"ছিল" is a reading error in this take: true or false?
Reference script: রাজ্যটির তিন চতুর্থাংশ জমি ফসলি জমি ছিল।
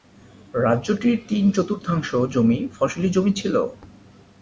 false